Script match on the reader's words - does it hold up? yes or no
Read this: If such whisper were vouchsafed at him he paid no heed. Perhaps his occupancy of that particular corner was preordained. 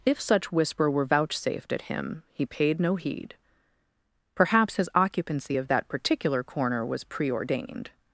yes